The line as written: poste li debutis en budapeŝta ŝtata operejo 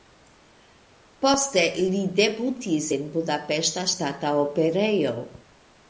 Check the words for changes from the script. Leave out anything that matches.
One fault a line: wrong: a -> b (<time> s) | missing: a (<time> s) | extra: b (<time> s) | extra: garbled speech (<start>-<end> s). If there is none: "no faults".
no faults